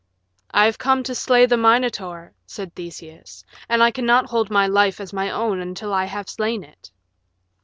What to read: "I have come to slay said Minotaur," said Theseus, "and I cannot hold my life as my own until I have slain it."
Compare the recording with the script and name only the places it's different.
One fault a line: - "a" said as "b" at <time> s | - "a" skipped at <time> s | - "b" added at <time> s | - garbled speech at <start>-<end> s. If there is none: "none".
- "said" said as "the" at 1.4 s